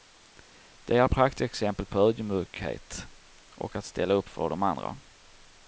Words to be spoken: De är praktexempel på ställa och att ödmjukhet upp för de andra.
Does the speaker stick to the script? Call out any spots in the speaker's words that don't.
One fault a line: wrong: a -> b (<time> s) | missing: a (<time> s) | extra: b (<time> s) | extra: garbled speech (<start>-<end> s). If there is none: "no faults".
wrong: ställa -> ödmjukhet (2.0 s)
wrong: ödmjukhet -> ställa (3.9 s)